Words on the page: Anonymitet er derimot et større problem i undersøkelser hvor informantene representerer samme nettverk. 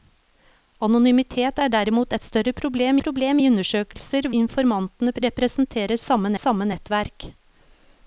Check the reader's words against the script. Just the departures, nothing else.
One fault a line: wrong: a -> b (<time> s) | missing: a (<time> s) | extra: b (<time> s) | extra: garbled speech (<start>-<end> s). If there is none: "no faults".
extra: problem (3.0 s)
missing: hvor (4.3 s)
extra: samme (6.4 s)